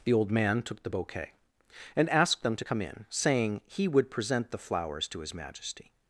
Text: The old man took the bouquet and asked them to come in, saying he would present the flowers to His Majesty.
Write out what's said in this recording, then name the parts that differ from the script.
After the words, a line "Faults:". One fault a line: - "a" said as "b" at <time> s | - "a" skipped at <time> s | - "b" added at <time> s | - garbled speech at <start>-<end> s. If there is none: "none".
The old man took the bouquet and asked them to come in, saying he would present the flowers to His Majesty.
Faults:
none